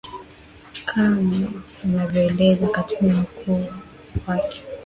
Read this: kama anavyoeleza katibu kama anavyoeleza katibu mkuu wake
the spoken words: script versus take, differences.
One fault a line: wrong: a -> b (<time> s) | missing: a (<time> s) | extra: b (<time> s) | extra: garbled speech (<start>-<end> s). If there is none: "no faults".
missing: kama anavyoeleza katibu (3.1 s)